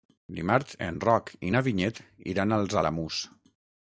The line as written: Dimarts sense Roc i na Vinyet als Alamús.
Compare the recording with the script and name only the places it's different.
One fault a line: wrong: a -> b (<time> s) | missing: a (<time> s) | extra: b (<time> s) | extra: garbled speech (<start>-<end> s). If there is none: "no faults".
wrong: sense -> en (0.8 s)
extra: iran (2.3 s)